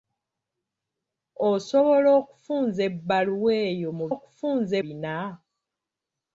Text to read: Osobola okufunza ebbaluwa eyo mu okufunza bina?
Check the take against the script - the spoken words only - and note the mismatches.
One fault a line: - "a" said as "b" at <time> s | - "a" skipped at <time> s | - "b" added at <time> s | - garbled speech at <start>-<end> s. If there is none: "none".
none